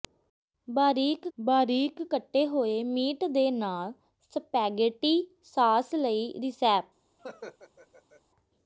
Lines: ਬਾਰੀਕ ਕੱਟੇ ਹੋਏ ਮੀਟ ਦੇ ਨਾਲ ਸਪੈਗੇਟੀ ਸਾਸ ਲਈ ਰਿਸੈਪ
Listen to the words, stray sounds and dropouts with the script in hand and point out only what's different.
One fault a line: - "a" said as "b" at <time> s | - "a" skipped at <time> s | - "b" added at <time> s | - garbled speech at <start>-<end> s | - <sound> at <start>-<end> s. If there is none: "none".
- "ਬਾਰੀਕ" added at 1.4 s
- laugh at 7.2-8.2 s